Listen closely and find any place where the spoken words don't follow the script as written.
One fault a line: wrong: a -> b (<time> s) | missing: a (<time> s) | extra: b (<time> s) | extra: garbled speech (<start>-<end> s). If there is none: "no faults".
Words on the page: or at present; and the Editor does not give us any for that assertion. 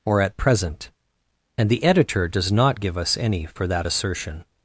no faults